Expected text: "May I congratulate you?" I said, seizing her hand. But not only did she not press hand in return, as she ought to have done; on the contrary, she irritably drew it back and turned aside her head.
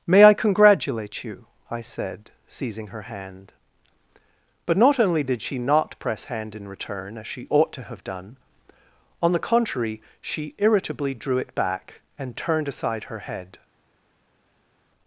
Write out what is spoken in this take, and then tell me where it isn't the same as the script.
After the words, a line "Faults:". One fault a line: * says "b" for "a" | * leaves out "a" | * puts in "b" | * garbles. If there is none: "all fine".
"May I congratulate you?" I said, seizing her hand. But not only did she not press hand in return, as she ought to have done; on the contrary, she irritably drew it back and turned aside her head.
Faults:
all fine